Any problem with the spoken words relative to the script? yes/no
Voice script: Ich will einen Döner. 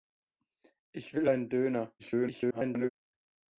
yes